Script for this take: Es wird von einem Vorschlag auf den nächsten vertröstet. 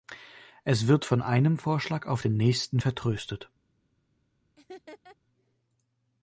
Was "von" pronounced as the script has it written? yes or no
yes